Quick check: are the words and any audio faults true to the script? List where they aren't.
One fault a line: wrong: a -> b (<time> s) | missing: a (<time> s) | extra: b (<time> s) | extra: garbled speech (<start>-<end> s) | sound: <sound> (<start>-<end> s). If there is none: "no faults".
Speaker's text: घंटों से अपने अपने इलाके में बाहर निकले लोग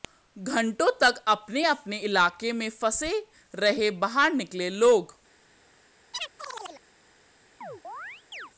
wrong: से -> तक (1.0 s)
extra: फंसे रहे (2.7 s)
sound: chirp (6.1-6.8 s)
sound: chirp (7.6-8.5 s)